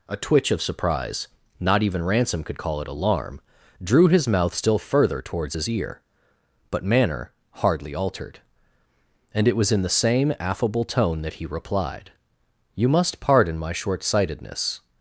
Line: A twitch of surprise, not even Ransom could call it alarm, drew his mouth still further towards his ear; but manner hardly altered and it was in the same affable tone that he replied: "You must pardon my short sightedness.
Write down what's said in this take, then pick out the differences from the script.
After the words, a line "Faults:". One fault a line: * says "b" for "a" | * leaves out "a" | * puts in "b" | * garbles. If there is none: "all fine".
A twitch of surprise, not even Ransom could call it alarm, drew his mouth still further towards his ear; but manner hardly altered and it was in the same affable tone that he replied: "You must pardon my short sightedness.
Faults:
all fine